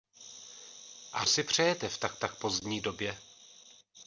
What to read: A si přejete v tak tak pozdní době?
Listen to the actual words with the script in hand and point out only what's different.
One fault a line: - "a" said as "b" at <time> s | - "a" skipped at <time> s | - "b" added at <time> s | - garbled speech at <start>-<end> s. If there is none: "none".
none